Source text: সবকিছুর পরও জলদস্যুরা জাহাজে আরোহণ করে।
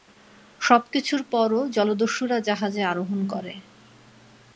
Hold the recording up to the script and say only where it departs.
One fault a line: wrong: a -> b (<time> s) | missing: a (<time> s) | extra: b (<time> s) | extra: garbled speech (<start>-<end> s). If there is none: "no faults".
no faults